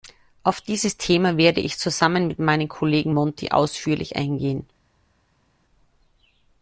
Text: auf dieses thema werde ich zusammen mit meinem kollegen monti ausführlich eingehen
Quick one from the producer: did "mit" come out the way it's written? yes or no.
yes